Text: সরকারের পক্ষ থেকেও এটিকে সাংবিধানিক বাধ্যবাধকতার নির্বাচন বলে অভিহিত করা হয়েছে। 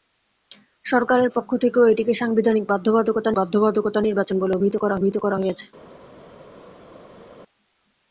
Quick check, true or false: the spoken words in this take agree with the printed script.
false